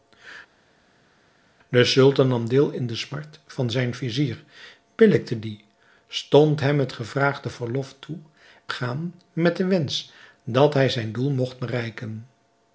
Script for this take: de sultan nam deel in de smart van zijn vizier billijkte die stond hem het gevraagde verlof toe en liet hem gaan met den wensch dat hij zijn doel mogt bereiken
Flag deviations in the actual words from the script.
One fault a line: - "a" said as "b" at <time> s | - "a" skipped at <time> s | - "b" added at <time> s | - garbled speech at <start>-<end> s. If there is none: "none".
- "en liet hem" skipped at 8.2 s